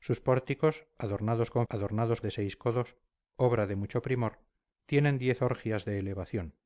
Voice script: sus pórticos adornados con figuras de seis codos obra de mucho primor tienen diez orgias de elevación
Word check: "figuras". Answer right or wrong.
wrong